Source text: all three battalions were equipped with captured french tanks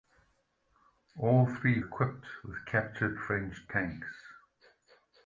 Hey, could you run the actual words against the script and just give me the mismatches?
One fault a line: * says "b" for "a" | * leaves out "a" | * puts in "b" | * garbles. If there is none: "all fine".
* leaves out "battalions were"